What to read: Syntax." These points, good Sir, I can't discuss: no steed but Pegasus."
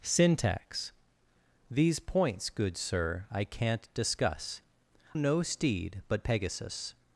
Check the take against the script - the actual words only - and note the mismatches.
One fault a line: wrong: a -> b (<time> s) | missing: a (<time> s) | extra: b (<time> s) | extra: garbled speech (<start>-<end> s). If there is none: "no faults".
no faults